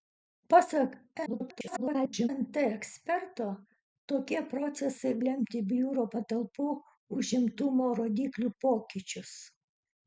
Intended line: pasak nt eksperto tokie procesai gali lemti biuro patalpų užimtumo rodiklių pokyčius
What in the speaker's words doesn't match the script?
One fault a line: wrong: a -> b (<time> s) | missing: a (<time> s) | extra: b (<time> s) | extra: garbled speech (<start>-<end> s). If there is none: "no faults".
extra: garbled speech (1.3-2.3 s)
missing: gali (5.1 s)